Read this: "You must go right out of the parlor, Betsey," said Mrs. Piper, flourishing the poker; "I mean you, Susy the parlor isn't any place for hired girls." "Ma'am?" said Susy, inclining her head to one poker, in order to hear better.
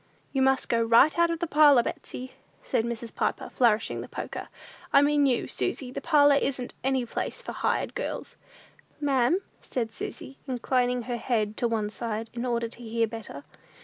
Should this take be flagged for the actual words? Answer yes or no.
yes